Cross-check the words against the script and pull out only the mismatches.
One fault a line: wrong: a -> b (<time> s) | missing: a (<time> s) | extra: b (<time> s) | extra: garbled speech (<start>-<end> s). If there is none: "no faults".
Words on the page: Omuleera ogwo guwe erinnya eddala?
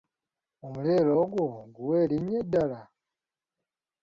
no faults